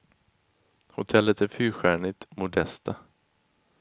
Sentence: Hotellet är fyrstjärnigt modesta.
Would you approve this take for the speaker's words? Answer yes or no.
yes